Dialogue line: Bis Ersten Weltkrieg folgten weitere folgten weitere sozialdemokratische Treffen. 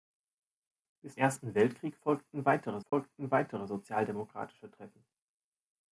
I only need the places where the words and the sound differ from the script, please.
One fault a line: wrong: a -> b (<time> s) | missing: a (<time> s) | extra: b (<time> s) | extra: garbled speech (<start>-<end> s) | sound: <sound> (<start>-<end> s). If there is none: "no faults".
sound: dropout (2.9-2.9 s)